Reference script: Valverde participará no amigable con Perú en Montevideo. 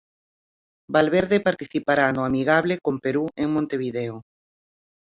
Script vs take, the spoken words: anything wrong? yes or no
no